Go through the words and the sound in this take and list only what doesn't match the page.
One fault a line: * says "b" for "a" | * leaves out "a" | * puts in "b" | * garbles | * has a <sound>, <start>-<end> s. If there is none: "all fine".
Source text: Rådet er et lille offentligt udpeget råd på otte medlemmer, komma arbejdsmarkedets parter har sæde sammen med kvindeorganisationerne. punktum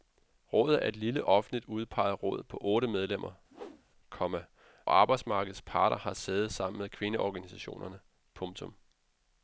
* has a whoosh, 3.5-3.8 s